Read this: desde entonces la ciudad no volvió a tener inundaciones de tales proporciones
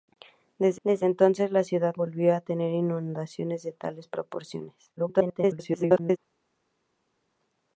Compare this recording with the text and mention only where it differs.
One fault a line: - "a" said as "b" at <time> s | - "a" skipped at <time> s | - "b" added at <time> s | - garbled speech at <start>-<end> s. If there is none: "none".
- "desde" added at 0.8 s
- "no" skipped at 1.9 s
- garbled speech at 5.0-6.2 s